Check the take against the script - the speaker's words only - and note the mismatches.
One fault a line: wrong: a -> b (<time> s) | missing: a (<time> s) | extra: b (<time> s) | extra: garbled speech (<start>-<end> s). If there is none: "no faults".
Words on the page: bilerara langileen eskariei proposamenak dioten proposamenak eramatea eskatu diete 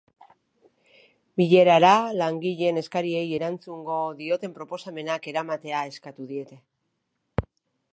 wrong: proposamenak -> erantzungo (3.4 s)